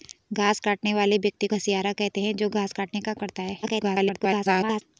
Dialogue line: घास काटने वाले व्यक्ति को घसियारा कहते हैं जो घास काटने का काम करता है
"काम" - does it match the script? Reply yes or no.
no